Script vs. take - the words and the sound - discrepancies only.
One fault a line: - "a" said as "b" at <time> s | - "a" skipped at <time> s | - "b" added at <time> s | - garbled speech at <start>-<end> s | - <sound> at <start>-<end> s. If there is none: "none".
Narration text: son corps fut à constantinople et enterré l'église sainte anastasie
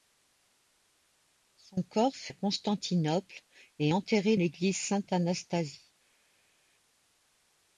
none